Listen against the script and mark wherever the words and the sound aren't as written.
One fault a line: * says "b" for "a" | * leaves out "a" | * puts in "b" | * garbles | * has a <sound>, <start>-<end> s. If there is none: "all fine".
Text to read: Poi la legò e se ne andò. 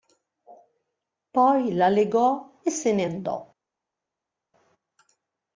all fine